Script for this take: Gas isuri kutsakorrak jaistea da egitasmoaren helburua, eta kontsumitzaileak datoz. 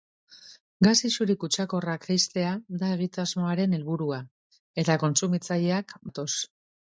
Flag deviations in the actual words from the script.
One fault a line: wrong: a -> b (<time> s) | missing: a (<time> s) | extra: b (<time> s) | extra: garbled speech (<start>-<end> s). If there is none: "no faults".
no faults